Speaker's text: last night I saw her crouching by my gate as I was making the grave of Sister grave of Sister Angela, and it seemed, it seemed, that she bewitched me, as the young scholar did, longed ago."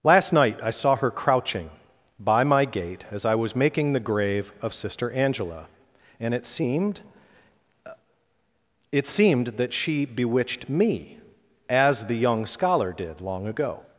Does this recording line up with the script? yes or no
no